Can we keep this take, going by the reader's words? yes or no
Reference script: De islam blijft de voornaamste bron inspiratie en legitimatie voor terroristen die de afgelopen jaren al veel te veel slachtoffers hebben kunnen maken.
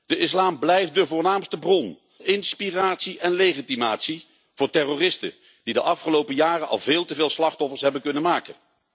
yes